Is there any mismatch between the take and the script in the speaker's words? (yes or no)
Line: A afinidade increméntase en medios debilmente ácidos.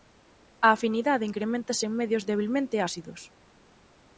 no